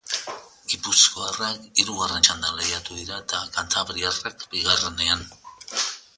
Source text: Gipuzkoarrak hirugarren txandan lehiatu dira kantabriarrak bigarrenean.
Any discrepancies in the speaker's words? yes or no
yes